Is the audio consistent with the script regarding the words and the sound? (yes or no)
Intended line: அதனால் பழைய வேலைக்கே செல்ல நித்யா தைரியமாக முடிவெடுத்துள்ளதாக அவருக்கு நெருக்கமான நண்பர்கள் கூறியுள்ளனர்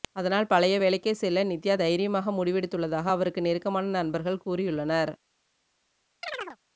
no